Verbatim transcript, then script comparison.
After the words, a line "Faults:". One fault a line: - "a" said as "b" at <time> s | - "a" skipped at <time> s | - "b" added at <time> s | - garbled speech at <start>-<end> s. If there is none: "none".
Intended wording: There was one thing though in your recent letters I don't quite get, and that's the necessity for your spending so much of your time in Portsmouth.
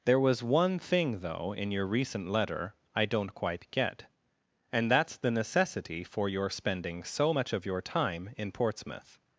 There was one thing though in your recent letter I don't quite get, and that's the necessity for your spending so much of your time in Portsmouth.
Faults:
- "letters" said as "letter" at 2.3 s